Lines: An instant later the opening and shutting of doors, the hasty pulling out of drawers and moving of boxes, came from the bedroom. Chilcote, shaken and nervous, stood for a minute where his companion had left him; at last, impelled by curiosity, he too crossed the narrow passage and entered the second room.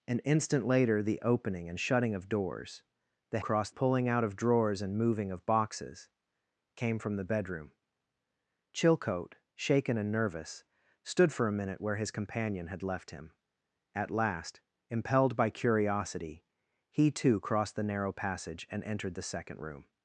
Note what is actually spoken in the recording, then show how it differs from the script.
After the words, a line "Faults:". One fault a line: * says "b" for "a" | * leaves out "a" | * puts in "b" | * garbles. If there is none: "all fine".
An instant later the opening and shutting of doors, the crossed pulling out of drawers and moving of boxes, came from the bedroom. Chilcote, shaken and nervous, stood for a minute where his companion had left him; at last, impelled by curiosity, he too crossed the narrow passage and entered the second room.
Faults:
* says "crossed" for "hasty"